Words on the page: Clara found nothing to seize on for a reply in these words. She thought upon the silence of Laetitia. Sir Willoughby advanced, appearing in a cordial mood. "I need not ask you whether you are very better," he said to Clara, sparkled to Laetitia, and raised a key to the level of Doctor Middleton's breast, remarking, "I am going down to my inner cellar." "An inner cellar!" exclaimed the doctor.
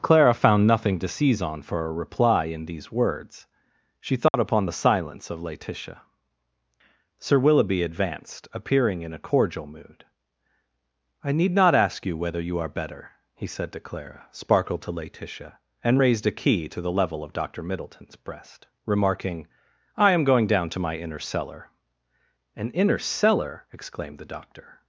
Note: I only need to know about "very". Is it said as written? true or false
false